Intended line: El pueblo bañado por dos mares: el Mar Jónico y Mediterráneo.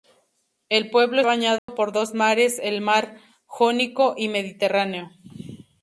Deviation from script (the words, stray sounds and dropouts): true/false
true